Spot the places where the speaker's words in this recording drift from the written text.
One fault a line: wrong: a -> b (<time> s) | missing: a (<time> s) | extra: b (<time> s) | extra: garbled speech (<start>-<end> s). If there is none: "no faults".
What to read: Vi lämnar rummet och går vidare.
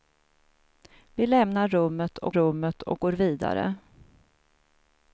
extra: rummet och (2.3 s)